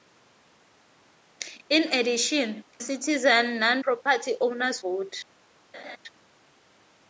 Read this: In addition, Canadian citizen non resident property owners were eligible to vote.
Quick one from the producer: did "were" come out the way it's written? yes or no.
no